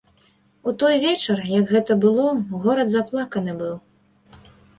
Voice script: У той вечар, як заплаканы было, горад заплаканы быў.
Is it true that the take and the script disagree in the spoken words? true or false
true